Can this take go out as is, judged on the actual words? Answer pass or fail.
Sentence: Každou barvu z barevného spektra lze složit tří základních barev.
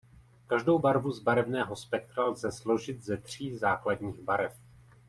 fail